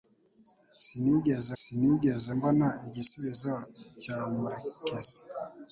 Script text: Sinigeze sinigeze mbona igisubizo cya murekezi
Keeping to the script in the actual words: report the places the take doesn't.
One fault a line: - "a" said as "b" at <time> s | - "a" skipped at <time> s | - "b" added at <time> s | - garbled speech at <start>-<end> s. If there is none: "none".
none